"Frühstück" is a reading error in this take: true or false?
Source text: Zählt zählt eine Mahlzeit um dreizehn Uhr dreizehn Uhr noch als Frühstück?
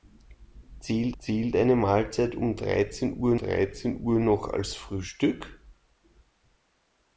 false